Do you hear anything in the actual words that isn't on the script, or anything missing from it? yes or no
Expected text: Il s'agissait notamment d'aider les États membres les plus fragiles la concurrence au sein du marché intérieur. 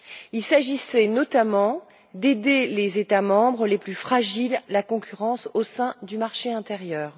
no